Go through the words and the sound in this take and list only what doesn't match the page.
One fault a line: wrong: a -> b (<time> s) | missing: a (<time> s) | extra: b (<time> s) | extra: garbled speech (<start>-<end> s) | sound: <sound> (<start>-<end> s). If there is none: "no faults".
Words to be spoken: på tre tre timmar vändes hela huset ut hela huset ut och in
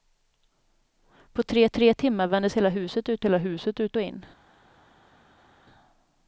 no faults